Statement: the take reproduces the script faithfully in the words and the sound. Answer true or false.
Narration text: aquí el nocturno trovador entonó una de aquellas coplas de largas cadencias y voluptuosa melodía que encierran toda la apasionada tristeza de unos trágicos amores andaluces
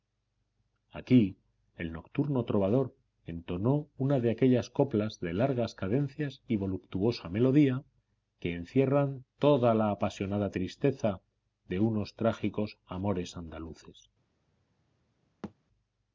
false